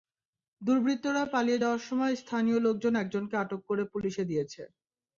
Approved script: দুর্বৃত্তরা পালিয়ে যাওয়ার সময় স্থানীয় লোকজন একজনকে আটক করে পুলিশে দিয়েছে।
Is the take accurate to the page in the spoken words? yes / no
yes